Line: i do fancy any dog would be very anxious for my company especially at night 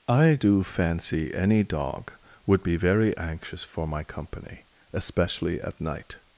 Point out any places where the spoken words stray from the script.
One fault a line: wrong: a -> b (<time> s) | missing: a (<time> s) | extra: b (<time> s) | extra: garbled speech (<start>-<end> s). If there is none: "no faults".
no faults